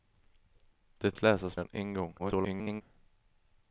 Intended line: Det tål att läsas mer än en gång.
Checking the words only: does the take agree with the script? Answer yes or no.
no